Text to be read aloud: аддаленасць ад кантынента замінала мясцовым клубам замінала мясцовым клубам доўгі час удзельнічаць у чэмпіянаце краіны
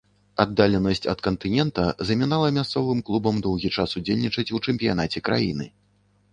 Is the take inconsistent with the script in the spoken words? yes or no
yes